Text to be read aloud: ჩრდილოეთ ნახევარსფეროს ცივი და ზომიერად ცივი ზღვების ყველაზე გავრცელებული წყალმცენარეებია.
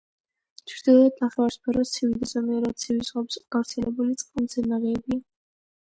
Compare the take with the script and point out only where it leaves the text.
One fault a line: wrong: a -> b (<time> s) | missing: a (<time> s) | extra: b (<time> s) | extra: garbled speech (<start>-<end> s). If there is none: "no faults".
missing: ყველაზე (3.4 s)